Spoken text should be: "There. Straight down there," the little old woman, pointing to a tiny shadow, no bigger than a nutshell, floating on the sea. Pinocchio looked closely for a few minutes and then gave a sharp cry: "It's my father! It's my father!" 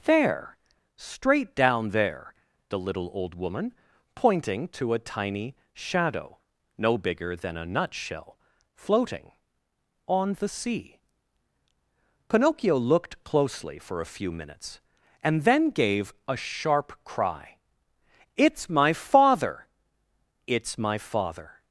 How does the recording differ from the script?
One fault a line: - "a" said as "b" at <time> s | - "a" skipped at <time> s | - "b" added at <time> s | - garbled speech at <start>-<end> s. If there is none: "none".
none